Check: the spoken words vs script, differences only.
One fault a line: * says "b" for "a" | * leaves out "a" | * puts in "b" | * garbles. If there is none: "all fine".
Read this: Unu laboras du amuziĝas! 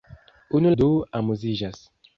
* leaves out "laboras"